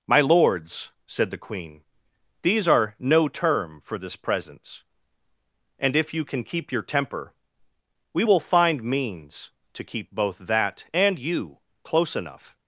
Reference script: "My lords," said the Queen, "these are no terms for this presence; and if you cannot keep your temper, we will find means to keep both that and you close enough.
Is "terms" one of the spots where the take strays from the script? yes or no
yes